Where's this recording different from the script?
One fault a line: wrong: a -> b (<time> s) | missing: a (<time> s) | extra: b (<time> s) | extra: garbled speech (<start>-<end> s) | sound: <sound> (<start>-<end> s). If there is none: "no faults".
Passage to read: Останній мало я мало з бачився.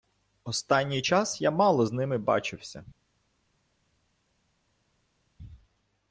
wrong: мало -> час (1.0 s)
extra: ними (1.9 s)